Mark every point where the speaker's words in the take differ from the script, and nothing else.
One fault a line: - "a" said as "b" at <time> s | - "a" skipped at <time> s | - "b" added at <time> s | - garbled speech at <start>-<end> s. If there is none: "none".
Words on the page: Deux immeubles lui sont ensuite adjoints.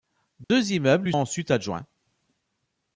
- "sont" skipped at 1.1 s